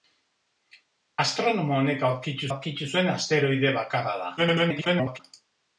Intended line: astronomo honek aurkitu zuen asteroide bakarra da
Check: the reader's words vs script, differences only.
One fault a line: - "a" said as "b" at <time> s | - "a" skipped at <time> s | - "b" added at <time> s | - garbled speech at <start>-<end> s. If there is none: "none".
- "aurkitu" added at 2.5 s
- garbled speech at 4.4-5.2 s